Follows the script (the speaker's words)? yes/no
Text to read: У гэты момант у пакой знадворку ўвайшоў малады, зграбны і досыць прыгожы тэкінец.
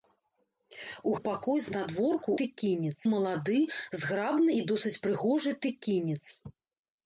no